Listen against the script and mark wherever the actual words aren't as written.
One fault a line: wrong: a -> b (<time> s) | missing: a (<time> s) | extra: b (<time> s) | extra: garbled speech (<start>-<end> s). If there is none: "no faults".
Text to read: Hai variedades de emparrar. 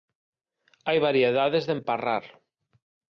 no faults